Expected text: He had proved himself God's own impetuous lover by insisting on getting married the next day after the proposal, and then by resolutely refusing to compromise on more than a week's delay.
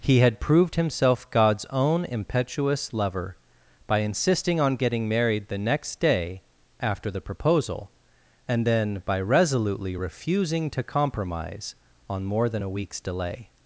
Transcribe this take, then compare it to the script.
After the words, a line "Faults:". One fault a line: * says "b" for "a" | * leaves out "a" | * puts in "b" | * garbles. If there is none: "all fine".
He had proved himself God's own impetuous lover by insisting on getting married the next day after the proposal, and then by resolutely refusing to compromise on more than a week's delay.
Faults:
all fine